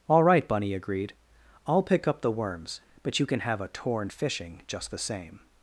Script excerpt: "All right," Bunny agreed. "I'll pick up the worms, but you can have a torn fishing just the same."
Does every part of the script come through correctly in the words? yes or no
yes